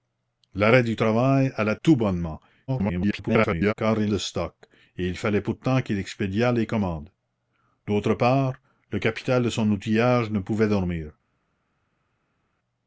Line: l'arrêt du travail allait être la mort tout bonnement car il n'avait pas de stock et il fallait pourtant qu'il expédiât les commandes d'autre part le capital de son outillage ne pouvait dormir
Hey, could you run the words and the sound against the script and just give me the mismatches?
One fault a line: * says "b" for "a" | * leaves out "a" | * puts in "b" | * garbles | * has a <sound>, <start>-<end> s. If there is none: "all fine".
* leaves out "être la mort"
* garbles
* leaves out "n'avait pas"